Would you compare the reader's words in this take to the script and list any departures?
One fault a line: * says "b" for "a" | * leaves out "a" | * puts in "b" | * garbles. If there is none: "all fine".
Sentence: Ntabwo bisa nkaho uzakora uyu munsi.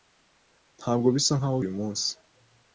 * leaves out "uzakora"